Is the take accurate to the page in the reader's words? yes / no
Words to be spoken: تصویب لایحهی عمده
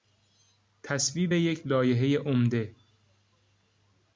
no